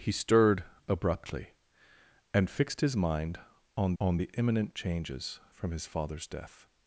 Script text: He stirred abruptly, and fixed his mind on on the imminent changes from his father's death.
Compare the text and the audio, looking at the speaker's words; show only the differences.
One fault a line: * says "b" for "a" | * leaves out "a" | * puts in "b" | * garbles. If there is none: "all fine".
all fine